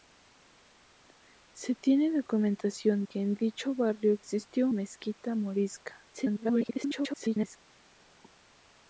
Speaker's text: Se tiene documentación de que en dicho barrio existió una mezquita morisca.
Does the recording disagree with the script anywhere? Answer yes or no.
yes